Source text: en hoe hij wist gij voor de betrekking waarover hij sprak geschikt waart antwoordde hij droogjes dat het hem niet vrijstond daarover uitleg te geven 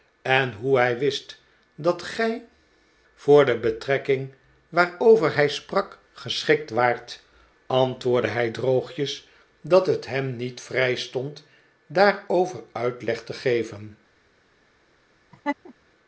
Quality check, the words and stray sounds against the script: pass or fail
fail